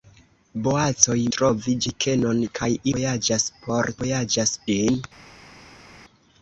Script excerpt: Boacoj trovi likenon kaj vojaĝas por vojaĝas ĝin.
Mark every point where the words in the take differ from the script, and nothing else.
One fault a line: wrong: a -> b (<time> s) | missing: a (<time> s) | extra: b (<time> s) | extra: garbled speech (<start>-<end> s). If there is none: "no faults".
no faults